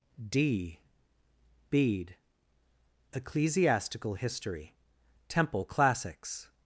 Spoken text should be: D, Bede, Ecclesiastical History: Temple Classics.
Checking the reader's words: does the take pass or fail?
pass